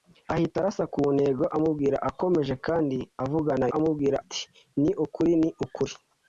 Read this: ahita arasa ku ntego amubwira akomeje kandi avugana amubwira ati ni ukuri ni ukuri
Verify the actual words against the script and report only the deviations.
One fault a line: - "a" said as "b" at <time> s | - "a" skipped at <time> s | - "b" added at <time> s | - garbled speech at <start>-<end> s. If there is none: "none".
none